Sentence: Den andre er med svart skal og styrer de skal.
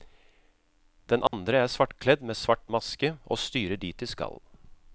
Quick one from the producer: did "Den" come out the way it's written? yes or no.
yes